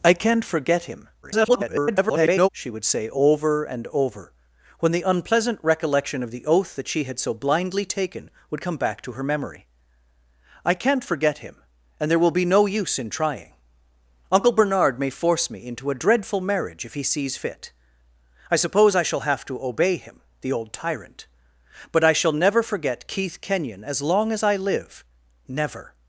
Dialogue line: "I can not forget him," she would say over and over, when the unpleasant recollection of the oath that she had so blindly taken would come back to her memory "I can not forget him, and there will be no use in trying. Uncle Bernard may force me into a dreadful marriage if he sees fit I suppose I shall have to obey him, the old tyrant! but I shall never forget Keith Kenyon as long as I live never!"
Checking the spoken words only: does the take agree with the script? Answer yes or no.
no